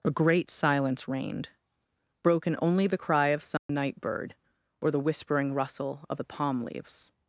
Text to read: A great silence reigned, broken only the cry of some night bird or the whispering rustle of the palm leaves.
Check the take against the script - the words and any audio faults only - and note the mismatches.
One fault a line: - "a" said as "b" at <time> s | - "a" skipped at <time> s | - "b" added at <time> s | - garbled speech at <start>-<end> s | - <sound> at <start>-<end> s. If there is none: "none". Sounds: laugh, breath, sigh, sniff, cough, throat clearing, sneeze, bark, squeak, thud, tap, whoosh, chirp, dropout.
- dropout at 3.6-3.7 s